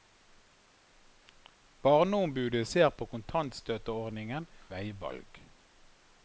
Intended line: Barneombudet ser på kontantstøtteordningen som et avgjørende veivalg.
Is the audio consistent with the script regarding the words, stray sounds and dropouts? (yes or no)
no